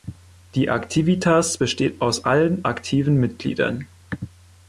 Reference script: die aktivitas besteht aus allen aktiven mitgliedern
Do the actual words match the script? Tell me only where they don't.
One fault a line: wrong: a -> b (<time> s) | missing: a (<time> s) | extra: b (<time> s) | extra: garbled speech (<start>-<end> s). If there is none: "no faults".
no faults